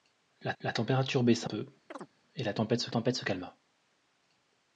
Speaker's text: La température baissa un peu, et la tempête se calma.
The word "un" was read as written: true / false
false